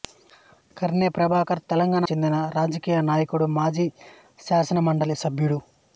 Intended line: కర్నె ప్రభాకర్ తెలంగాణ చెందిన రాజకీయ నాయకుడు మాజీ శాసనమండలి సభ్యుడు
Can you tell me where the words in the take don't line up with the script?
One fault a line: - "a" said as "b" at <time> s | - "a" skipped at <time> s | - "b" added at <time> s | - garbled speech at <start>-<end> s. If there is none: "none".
none